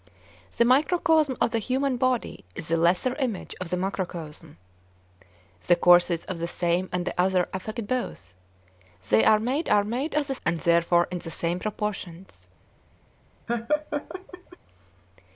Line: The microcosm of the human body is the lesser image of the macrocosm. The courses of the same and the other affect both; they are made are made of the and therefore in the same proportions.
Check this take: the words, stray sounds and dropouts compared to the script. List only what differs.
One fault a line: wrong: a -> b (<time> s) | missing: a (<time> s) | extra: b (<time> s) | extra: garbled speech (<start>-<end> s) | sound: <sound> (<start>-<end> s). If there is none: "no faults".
sound: laugh (13.5-14.6 s)